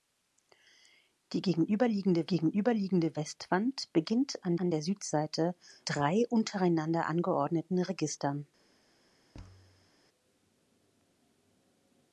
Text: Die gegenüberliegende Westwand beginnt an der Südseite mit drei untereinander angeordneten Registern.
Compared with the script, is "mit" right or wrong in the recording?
wrong